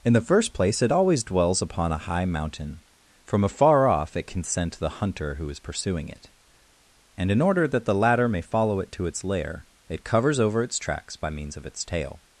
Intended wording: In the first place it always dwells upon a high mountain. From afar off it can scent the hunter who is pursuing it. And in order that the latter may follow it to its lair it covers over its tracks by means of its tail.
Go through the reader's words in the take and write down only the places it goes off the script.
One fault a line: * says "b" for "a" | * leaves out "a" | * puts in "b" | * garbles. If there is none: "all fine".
all fine